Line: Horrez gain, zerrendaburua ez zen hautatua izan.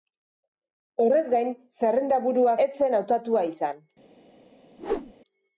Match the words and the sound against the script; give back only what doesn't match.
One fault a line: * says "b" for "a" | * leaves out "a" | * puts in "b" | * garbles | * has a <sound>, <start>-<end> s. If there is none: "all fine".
* has a whoosh, 4.8-5.1 s